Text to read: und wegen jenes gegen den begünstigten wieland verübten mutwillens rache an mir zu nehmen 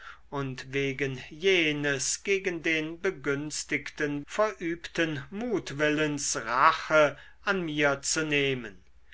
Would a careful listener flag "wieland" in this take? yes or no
yes